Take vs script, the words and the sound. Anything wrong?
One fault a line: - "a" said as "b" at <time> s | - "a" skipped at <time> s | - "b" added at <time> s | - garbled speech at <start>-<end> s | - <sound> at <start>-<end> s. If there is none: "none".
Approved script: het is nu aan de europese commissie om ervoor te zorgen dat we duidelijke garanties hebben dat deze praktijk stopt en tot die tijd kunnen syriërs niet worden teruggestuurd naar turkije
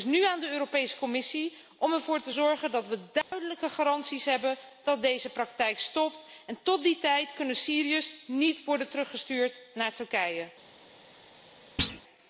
- dropout at 3.2-3.3 s
- thud at 11.8-12.0 s